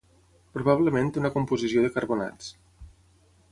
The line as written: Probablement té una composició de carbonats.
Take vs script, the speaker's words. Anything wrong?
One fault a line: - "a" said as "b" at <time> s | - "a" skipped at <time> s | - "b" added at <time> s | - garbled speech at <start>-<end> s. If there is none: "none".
none